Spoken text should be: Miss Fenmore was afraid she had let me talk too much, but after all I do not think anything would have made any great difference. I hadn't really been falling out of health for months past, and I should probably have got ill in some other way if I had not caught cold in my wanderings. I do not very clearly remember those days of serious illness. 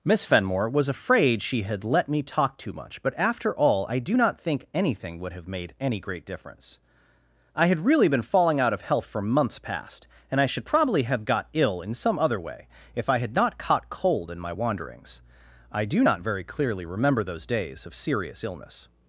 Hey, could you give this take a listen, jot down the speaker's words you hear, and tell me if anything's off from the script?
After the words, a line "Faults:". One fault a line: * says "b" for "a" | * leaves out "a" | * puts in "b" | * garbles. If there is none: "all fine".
Miss Fenmore was afraid she had let me talk too much, but after all I do not think anything would have made any great difference. I had really been falling out of health for months past, and I should probably have got ill in some other way if I had not caught cold in my wanderings. I do not very clearly remember those days of serious illness.
Faults:
* says "had" for "hadn't"